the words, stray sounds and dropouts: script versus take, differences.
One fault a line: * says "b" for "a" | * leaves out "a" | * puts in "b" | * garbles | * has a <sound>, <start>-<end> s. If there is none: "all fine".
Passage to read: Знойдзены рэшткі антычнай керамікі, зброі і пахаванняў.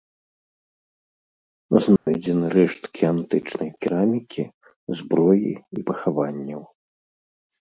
* has a dropout, 2.0-2.1 s